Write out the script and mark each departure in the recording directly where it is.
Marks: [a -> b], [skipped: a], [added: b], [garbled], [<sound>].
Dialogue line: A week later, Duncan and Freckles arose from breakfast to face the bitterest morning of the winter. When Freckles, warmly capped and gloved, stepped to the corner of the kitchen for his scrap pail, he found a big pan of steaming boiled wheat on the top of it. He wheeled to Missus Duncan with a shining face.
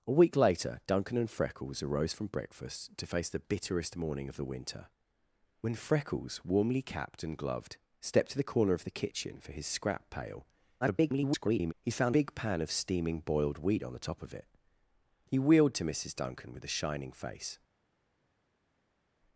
A week later, Duncan and Freckles arose from breakfast to face the bitterest morning of the winter. When Freckles, warmly capped and gloved, stepped to the corner of the kitchen for his scrap pail, [garbled] he found [skipped: a] big pan of steaming boiled wheat on the top of it. He wheeled to Missus Duncan with a shining face.